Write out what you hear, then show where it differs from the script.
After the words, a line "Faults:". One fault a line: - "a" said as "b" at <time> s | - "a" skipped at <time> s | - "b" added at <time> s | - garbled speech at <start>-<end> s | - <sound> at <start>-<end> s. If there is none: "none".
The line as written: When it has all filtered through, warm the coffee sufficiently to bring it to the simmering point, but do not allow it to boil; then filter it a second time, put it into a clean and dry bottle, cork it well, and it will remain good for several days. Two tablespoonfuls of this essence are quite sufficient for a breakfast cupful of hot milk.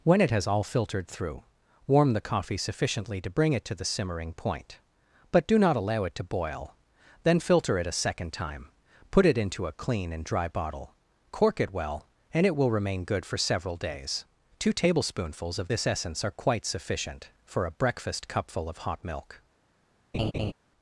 When it has all filtered through, warm the coffee sufficiently to bring it to the simmering point, but do not allow it to boil; then filter it a second time, put it into a clean and dry bottle, cork it well, and it will remain good for several days. Two tablespoonfuls of this essence are quite sufficient for a breakfast cupful of hot milk.
Faults:
- laugh at 20.1-20.5 s